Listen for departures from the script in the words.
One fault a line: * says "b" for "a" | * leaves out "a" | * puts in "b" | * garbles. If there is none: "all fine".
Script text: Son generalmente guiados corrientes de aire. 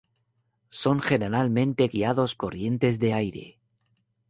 all fine